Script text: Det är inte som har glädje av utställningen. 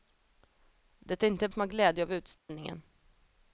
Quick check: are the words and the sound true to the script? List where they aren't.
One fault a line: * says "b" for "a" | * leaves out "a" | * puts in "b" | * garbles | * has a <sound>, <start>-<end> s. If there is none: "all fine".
* has a dropout, 2.4-2.5 s